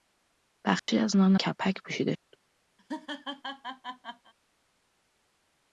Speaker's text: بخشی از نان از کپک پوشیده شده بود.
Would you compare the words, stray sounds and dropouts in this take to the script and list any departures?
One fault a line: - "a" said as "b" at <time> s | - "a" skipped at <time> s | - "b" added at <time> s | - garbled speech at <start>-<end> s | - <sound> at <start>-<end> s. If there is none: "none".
- dropout at 0.8-0.9 s
- "از" skipped at 1.4 s
- "شده" skipped at 2.1 s
- laugh at 2.8-4.3 s